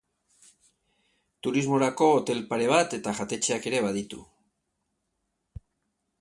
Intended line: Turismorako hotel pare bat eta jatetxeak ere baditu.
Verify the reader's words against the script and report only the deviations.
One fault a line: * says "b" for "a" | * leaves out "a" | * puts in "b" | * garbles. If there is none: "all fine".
all fine